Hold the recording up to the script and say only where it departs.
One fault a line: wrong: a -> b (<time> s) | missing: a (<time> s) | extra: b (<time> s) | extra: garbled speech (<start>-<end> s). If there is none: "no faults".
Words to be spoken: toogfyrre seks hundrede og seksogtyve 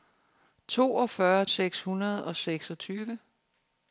no faults